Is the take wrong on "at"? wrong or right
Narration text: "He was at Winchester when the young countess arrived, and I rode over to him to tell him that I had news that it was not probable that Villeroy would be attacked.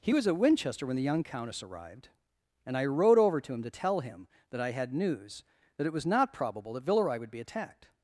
right